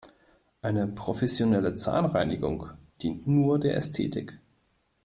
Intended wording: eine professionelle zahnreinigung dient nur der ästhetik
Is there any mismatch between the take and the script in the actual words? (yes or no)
no